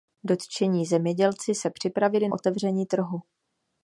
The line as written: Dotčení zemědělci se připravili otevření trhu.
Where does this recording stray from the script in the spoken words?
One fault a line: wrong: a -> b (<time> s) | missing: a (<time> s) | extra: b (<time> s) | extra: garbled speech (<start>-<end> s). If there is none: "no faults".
no faults